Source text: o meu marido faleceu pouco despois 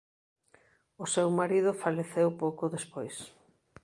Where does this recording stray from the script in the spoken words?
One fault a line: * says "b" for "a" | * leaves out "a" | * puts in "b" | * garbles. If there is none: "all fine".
* says "seu" for "meu"